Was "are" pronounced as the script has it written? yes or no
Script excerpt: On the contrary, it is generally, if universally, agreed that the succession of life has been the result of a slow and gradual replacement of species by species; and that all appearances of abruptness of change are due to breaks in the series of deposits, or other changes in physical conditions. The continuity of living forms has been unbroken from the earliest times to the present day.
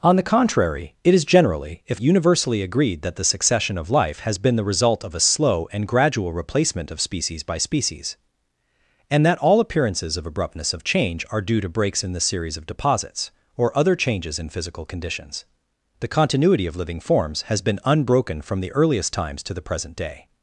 yes